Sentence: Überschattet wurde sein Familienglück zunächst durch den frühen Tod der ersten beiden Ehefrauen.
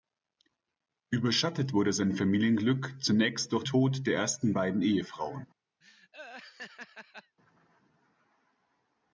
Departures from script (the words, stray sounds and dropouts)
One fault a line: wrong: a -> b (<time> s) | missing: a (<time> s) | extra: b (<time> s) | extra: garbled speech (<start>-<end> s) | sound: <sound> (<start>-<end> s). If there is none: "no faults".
missing: den frühen (3.6 s)
sound: laugh (5.8-7.4 s)